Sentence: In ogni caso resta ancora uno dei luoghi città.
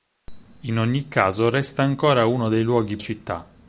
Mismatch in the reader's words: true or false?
false